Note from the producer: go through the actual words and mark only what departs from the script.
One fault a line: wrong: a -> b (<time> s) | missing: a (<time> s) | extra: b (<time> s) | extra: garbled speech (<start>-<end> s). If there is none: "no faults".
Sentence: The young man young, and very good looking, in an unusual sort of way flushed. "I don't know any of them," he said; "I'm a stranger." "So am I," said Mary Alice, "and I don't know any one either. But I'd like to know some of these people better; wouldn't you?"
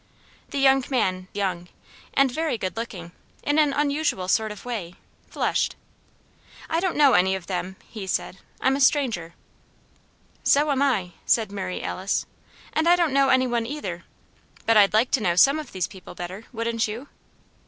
no faults